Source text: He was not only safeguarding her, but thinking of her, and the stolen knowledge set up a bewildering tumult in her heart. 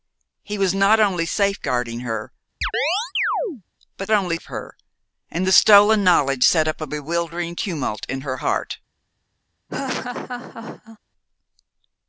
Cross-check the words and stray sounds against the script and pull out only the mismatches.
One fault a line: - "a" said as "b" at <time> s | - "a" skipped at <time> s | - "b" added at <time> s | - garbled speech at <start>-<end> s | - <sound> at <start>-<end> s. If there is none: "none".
- chirp at 2.6-3.6 s
- "thinking" said as "only" at 4.1 s
- laugh at 9.7-11.0 s